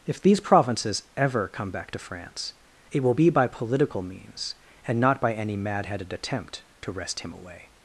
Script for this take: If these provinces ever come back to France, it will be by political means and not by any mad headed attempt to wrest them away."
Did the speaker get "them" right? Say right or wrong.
wrong